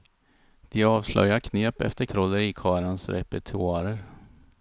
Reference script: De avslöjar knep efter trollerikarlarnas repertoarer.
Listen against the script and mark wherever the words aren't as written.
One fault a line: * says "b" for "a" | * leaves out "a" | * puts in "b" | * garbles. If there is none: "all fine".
all fine